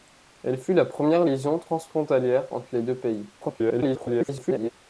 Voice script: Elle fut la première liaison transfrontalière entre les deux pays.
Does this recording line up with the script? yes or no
no